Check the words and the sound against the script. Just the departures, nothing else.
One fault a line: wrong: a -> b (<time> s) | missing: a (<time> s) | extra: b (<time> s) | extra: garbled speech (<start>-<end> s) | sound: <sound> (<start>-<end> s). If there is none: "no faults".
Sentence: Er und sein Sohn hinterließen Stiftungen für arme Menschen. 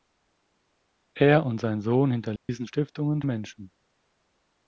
sound: dropout (2.4-2.5 s)
missing: für arme (3.2 s)